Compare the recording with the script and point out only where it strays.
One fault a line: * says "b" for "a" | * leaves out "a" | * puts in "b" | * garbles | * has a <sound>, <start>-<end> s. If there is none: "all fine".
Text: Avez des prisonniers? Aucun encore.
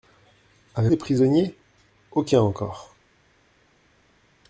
all fine